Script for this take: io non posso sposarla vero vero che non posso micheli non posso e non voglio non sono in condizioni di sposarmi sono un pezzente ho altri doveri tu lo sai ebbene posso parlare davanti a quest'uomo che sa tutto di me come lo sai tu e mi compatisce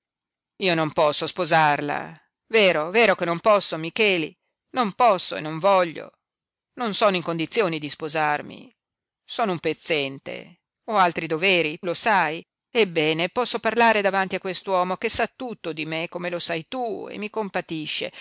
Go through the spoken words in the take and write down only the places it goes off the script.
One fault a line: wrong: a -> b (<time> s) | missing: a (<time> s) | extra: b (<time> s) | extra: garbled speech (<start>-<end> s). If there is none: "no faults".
missing: tu (11.8 s)